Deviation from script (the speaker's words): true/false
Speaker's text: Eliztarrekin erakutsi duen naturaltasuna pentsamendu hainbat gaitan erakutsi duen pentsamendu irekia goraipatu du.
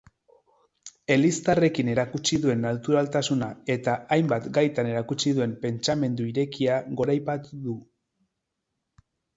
true